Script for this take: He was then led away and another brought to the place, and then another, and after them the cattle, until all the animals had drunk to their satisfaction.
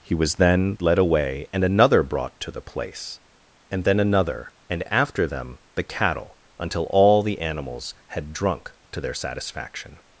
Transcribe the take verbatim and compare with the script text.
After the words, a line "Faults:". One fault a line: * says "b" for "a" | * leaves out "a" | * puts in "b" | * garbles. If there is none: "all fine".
He was then led away and another brought to the place, and then another, and after them the cattle, until all the animals had drunk to their satisfaction.
Faults:
all fine